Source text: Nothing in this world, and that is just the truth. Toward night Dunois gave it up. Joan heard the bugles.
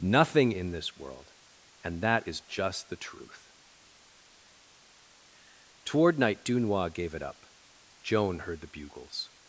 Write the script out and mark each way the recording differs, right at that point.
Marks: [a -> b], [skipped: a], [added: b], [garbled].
Nothing in this world, and that is just the truth. Toward night Dunois gave it up. Joan heard the bugles.